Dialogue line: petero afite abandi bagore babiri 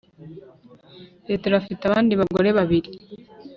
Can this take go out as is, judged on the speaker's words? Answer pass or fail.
pass